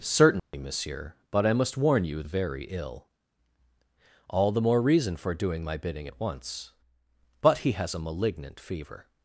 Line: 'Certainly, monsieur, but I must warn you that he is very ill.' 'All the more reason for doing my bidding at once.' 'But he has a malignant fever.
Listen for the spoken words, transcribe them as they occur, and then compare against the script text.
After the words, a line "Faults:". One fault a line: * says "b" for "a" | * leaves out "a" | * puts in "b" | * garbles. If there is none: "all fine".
'Certainly, monsieur, but I must warn you very ill.' 'All the more reason for doing my bidding at once.' 'But he has a malignant fever.
Faults:
* leaves out "that he is"